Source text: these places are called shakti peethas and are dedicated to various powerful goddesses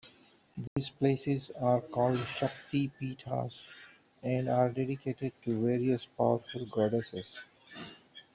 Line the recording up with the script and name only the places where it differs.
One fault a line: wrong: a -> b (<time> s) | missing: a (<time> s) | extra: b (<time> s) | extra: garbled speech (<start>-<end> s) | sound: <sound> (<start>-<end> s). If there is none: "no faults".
sound: dropout (0.7-0.8 s)